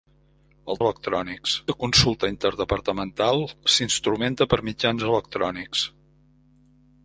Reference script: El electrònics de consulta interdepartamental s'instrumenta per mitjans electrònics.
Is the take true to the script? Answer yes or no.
yes